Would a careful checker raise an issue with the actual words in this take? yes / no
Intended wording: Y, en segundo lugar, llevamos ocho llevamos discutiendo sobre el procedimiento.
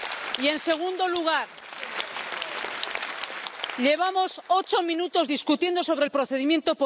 yes